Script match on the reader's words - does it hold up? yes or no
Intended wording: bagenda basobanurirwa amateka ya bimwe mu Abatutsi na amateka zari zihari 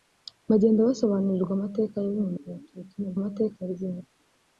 yes